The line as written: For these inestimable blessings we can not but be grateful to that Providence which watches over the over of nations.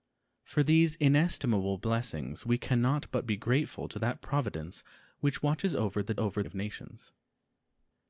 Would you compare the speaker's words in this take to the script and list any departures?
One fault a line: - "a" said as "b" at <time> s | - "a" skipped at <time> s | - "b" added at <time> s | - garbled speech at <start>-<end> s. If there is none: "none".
none